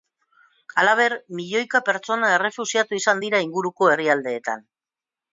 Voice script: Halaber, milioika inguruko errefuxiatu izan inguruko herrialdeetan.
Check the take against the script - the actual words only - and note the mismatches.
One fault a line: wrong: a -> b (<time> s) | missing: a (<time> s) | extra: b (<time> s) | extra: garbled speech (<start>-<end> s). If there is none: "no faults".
wrong: inguruko -> pertsona (1.9 s)
extra: dira (3.2 s)